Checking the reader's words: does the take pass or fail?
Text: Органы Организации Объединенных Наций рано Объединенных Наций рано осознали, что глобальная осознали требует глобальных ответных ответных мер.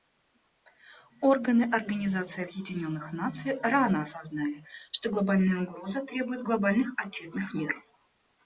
fail